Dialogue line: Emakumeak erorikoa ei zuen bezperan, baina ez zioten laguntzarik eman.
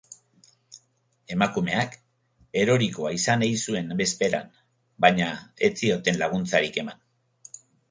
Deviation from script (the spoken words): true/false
true